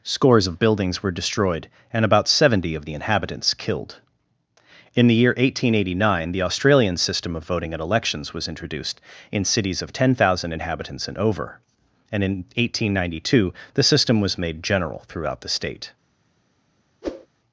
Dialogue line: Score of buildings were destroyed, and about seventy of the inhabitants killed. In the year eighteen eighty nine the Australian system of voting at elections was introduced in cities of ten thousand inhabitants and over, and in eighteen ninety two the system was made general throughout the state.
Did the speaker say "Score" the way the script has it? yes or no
no